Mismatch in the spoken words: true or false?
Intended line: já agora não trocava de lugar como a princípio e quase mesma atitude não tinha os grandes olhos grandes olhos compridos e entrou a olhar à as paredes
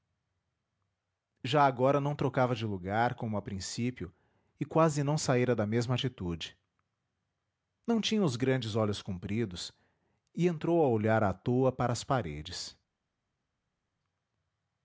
true